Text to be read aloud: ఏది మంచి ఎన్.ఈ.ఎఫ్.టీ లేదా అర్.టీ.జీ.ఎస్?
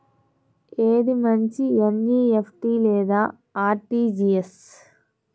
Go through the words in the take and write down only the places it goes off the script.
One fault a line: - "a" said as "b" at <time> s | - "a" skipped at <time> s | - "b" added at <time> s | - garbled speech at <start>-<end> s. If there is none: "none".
none